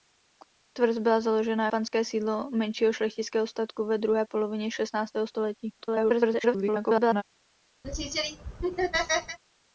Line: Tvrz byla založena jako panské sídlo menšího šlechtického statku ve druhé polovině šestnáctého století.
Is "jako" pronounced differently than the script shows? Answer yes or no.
yes